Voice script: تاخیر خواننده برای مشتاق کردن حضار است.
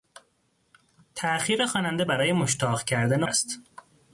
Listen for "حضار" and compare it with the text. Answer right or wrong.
wrong